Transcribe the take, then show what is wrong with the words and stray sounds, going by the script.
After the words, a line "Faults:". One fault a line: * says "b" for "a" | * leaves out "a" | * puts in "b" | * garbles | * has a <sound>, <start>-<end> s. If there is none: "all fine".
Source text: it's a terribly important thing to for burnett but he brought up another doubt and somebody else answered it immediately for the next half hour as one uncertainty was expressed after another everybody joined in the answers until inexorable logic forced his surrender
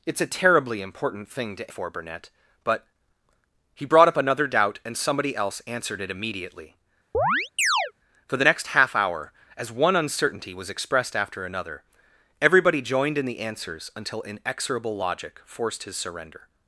it's a terribly important thing to for burnett but he brought up another doubt and somebody else answered it immediately for the next half hour as one uncertainty was expressed after another everybody joined in the answers until inexorable logic forced his surrender
Faults:
* has a chirp, 7.1-7.9 s